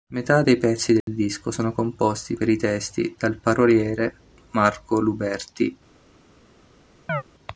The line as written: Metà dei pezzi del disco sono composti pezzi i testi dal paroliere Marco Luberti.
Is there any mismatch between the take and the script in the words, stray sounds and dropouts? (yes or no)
yes